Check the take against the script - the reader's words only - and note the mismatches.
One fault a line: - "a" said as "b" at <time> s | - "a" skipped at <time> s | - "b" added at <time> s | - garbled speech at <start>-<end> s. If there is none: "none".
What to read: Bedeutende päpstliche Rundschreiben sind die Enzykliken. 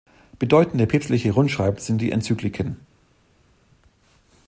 none